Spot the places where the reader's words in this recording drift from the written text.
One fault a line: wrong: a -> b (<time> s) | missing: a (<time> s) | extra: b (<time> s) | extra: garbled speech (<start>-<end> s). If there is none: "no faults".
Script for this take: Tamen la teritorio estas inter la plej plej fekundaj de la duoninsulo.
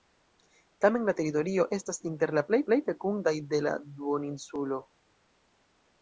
no faults